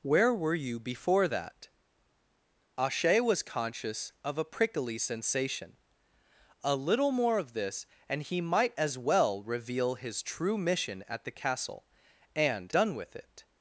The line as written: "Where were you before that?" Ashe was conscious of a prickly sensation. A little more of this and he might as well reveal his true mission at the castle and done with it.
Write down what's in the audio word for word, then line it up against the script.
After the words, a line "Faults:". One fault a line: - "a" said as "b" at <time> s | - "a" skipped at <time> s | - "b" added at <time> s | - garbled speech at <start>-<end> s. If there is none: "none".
"Where were you before that?" Ashe was conscious of a prickly sensation. A little more of this and he might as well reveal his true mission at the castle and done with it.
Faults:
none